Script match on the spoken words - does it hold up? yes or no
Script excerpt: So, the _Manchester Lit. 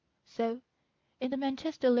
no